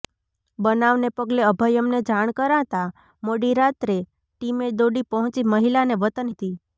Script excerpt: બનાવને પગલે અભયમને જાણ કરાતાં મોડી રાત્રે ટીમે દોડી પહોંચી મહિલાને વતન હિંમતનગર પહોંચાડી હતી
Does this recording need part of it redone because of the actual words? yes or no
yes